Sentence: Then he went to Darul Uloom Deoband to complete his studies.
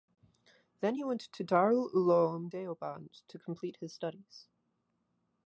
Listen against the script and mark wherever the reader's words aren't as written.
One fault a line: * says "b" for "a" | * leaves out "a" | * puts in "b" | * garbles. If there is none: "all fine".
all fine